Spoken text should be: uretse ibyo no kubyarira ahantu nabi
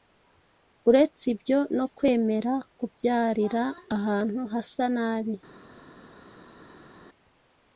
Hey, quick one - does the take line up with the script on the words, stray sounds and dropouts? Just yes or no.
no